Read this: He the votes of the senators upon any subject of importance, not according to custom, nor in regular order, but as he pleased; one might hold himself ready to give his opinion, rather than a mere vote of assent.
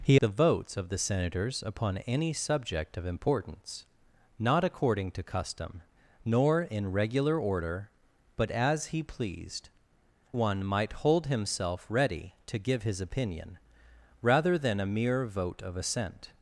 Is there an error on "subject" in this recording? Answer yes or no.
no